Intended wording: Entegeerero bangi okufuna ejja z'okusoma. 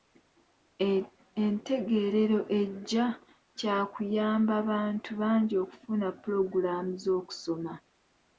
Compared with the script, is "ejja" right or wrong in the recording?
wrong